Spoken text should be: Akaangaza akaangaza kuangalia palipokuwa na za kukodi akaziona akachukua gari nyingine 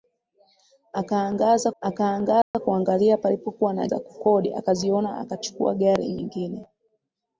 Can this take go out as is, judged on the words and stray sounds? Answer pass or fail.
fail